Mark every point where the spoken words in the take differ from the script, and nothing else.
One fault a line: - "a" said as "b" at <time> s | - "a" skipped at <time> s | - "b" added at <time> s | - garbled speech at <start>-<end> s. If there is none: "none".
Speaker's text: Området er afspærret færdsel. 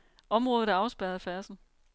none